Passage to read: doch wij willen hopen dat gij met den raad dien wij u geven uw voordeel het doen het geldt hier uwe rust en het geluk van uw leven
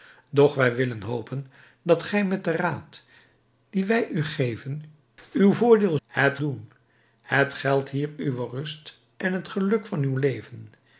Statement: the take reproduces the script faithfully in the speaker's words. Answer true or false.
true